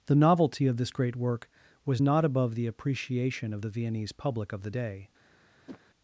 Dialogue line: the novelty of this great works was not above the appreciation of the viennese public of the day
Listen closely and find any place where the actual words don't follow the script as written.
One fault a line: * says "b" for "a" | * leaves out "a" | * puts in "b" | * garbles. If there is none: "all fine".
* says "work" for "works"